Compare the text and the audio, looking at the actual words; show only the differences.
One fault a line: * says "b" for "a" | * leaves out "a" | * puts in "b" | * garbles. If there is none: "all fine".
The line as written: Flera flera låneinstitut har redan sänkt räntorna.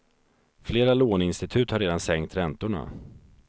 * leaves out "flera"